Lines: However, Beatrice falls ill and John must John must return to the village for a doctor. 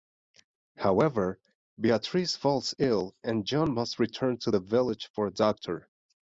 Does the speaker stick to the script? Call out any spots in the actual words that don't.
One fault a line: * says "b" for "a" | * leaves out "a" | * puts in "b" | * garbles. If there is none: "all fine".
* leaves out "John must"